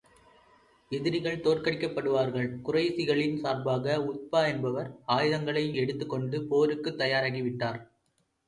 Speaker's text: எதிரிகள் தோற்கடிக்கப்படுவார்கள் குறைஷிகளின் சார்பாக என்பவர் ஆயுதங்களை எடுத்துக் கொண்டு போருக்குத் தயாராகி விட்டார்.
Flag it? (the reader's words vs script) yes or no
yes